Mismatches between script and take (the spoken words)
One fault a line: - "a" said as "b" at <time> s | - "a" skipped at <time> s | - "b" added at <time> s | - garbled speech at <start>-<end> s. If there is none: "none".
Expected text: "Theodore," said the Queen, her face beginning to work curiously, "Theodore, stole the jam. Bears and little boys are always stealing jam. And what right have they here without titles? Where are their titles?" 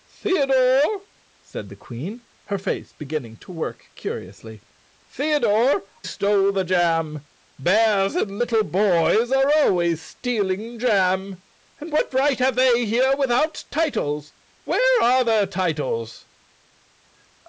none